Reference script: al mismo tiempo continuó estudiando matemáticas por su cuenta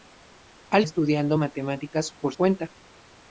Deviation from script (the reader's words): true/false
true